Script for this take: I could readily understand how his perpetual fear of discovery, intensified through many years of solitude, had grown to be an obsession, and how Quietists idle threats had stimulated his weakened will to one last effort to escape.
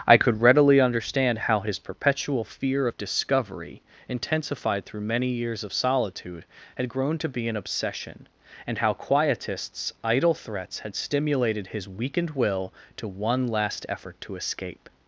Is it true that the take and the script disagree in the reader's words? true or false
false